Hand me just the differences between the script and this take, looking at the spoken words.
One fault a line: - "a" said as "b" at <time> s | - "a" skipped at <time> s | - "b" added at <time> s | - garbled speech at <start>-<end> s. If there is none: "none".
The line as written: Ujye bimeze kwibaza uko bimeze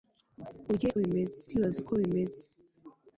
none